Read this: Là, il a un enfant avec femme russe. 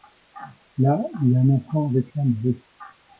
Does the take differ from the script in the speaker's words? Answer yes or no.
no